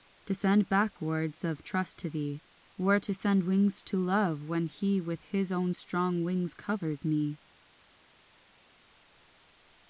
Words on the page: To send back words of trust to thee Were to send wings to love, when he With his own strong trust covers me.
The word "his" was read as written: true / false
true